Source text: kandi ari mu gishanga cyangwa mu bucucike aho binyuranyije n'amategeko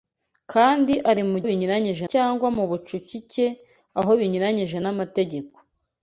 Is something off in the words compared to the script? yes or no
yes